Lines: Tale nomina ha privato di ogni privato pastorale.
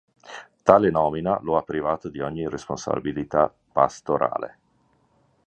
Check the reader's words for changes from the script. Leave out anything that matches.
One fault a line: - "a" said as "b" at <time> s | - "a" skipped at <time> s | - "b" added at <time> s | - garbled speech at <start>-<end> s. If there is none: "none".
- "lo" added at 1.4 s
- "privato" said as "responsabilità" at 2.5 s